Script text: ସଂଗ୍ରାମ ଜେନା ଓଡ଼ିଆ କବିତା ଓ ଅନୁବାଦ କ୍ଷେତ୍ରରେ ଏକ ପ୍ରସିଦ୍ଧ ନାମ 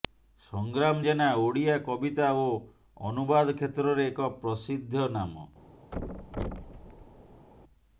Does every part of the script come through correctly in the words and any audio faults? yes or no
no